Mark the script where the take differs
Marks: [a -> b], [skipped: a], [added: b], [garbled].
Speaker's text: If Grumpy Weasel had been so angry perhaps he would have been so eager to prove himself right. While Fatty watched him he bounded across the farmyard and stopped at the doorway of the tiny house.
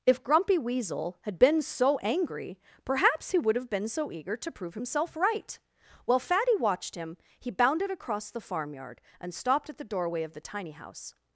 If Grumpy Weasel had been so angry perhaps he would have been so eager to prove himself right. While Fatty watched him he bounded across the farmyard and stopped at the doorway of the tiny house.